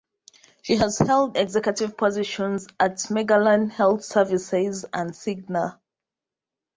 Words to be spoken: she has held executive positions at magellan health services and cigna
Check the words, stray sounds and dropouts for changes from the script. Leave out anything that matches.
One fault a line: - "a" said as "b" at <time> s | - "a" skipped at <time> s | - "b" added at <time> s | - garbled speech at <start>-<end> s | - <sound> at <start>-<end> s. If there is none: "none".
none